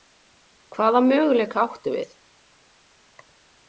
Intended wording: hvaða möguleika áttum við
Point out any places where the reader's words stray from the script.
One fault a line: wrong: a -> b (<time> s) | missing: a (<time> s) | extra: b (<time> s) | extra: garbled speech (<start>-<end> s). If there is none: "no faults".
no faults